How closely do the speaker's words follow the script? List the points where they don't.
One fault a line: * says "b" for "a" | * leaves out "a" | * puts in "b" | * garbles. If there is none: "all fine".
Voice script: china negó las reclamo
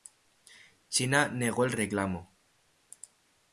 * says "el" for "las"